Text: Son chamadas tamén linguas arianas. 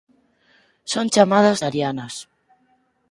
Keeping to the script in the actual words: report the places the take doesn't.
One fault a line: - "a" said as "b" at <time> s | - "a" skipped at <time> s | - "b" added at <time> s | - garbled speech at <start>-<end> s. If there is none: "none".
- "tamén linguas" skipped at 1.6 s